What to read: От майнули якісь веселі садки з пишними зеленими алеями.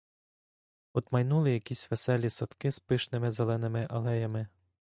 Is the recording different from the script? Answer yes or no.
no